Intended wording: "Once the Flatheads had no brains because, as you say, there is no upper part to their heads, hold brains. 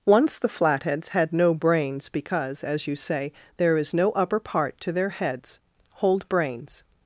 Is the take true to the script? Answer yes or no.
yes